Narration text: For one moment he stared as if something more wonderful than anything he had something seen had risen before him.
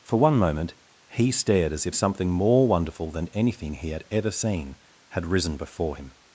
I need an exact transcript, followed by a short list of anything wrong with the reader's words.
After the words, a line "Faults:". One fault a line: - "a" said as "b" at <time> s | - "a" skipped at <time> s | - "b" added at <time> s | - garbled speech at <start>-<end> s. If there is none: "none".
For one moment he stared as if something more wonderful than anything he had ever seen had risen before him.
Faults:
- "something" said as "ever" at 4.1 s